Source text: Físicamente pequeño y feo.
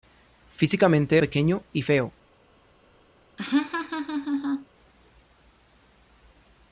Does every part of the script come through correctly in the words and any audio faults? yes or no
no